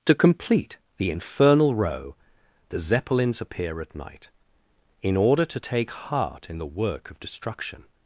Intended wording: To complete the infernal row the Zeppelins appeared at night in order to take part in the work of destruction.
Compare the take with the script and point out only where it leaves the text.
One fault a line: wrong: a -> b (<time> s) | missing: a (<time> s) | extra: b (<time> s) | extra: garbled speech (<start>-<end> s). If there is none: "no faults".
wrong: appeared -> appear (3.4 s)
wrong: part -> heart (5.9 s)